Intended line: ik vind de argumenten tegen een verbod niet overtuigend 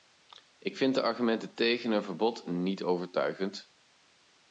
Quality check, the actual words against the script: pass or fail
pass